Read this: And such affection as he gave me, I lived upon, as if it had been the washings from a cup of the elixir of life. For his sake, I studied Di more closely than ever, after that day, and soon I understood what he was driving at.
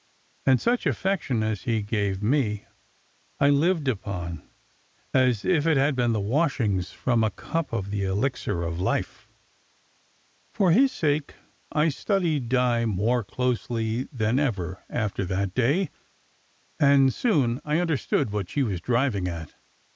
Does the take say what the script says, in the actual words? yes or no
no